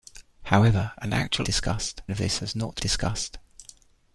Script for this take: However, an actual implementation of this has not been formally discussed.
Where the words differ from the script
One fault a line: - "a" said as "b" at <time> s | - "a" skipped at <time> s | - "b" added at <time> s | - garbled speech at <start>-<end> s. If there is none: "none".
- "implementation" said as "discussed" at 1.4 s
- "been formally" skipped at 2.8 s